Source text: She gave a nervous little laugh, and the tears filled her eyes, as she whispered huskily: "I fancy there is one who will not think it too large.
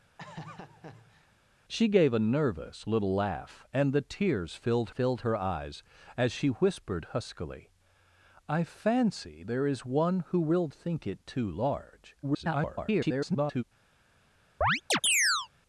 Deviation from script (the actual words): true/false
true